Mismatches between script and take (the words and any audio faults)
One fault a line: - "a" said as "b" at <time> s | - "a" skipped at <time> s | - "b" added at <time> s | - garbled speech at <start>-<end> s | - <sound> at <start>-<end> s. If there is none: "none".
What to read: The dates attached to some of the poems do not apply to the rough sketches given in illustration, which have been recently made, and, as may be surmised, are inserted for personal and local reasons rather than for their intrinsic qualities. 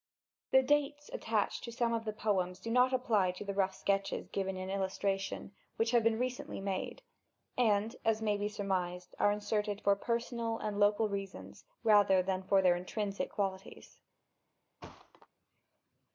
- thud at 14.8-15.3 s